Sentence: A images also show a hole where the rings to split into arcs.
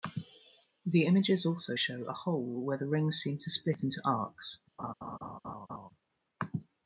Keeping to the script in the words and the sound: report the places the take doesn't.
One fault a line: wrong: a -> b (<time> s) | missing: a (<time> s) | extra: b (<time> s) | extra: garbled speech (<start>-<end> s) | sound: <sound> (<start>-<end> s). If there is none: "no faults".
wrong: A -> The (0.8 s)
extra: seem (3.2 s)
sound: laugh (4.8-5.9 s)